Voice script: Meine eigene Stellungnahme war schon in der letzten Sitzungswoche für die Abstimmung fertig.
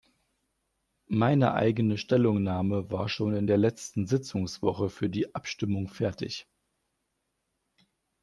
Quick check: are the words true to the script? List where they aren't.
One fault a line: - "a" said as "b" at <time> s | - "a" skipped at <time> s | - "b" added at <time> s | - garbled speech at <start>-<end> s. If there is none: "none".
none